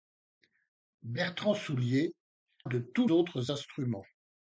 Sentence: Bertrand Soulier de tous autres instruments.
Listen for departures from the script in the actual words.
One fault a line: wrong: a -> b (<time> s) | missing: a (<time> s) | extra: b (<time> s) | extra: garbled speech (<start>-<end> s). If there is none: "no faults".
no faults